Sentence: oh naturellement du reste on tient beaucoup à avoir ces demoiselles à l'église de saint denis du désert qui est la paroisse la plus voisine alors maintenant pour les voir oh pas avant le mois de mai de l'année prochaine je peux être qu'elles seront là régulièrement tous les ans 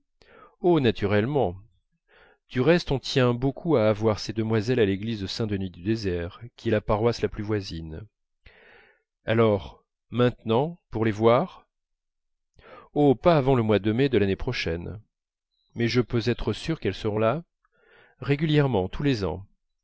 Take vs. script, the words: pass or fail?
fail